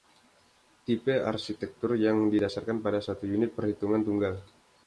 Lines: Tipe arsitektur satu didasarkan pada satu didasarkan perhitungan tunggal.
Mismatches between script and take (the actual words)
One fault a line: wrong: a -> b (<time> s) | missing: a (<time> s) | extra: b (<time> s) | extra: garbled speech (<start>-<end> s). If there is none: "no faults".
wrong: satu -> yang (1.9 s)
wrong: didasarkan -> unit (3.3 s)